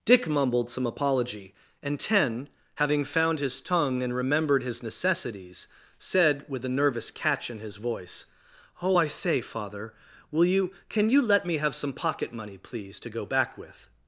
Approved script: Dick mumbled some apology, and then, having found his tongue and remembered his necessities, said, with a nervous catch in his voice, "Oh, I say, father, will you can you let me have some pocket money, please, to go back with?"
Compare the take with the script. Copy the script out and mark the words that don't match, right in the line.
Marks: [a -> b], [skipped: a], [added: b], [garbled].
Dick mumbled some apology, and [then, -> ten] having found his tongue and remembered his necessities, said, with a nervous catch in his voice, "Oh, I say, father, will you can you let me have some pocket money, please, to go back with?"